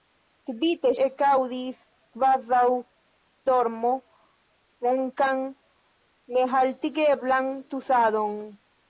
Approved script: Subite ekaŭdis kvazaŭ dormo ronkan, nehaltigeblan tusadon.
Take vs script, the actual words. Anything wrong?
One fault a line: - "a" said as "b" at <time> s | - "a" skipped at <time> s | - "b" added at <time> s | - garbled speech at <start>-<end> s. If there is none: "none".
none